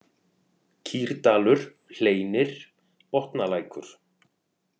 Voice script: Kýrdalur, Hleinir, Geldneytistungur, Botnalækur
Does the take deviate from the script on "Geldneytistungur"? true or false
true